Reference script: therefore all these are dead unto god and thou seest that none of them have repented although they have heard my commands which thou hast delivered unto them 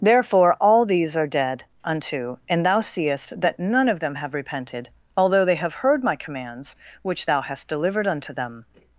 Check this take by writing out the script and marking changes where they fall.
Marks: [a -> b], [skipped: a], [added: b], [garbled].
therefore all these are dead unto [skipped: god] and thou seest that none of them have repented although they have heard my commands which thou hast delivered unto them